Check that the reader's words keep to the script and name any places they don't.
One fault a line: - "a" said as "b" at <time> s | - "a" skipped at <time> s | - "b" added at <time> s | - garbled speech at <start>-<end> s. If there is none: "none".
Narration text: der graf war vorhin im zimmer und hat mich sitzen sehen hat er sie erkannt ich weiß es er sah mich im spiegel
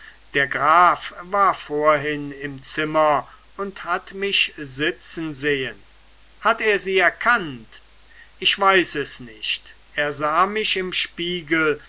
- "nicht" added at 9.2 s